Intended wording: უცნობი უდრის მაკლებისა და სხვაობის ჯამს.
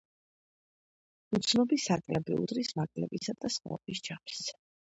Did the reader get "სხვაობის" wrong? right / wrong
right